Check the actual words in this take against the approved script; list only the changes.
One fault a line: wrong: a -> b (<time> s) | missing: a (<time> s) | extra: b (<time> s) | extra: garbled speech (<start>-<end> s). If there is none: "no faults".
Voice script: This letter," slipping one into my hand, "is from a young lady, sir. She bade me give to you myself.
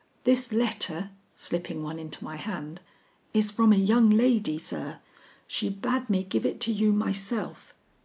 extra: it (6.4 s)